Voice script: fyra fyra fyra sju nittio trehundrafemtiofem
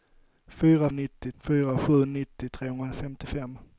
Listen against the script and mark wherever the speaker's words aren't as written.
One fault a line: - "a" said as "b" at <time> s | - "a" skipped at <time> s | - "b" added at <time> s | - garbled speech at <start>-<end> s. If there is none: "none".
- "fyra" said as "nittio" at 0.9 s